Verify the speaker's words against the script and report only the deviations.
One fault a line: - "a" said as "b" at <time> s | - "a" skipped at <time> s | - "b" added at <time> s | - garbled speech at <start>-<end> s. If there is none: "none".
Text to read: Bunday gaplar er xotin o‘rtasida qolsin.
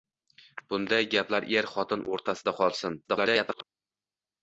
- garbled speech at 3.0-3.6 s